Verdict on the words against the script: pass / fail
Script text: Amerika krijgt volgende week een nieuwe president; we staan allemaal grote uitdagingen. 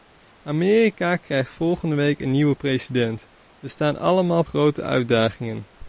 pass